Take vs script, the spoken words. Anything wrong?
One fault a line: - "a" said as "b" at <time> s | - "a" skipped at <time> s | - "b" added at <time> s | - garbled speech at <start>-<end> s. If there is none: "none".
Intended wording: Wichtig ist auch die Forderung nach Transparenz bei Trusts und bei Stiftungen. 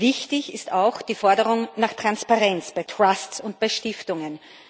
none